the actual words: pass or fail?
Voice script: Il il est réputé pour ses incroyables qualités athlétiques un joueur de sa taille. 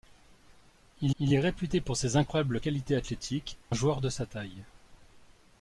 pass